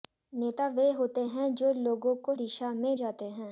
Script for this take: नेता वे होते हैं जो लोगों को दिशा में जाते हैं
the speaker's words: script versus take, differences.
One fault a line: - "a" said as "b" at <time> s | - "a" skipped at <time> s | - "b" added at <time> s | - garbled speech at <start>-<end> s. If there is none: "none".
none